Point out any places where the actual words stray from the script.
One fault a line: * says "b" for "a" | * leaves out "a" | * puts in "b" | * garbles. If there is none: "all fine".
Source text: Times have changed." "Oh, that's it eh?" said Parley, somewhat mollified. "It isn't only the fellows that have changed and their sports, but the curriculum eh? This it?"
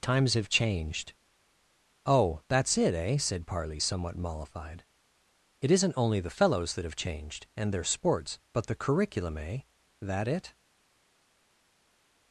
* says "That" for "This"